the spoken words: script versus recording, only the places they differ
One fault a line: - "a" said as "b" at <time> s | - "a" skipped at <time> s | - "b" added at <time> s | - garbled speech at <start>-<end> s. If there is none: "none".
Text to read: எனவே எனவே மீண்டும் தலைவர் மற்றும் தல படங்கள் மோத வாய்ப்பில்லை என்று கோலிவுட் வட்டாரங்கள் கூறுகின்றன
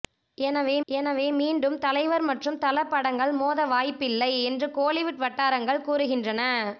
none